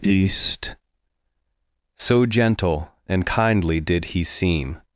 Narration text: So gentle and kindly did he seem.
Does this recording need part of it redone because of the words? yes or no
yes